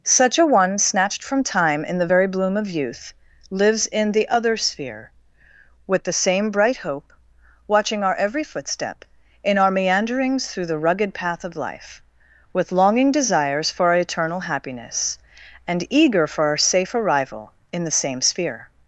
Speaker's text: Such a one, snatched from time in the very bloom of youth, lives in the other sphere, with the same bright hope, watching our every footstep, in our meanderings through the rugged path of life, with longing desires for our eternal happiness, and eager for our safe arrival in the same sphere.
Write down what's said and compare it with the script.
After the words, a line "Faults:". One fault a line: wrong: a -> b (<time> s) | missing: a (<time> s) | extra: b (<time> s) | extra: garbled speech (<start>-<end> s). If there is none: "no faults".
Such a one, snatched from time in the very bloom of youth, lives in the other sphere, with the same bright hope, watching our every footstep, in our meanderings through the rugged path of life, with longing desires for our eternal happiness, and eager for our safe arrival in the same sphere.
Faults:
no faults